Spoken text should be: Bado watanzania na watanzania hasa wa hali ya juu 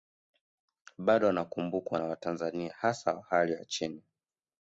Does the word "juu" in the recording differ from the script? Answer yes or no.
yes